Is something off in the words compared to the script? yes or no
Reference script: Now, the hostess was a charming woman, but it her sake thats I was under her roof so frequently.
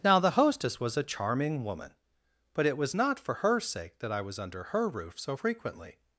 yes